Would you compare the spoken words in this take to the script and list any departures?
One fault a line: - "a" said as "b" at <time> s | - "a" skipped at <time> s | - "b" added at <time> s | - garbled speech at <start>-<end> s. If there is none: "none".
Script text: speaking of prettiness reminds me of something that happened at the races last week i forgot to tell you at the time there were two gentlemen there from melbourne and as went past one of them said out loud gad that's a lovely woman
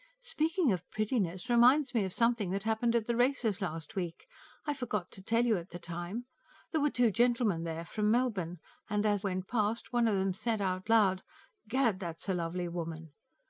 none